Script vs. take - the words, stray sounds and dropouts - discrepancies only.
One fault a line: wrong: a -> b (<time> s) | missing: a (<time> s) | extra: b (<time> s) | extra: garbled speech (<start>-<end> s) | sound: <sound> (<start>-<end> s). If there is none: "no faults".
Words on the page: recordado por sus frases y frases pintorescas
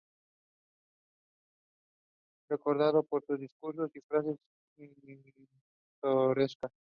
wrong: frases -> discursos (3.4 s)